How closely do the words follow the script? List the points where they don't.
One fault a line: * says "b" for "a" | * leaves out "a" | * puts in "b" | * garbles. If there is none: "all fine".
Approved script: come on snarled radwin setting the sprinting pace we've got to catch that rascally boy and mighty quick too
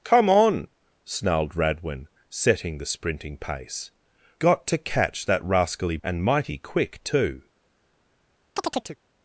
* leaves out "we've"
* leaves out "boy"